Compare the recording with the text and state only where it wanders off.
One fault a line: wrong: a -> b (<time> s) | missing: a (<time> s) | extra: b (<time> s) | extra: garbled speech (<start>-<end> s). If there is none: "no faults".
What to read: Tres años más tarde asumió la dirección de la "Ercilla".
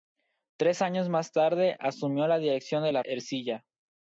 no faults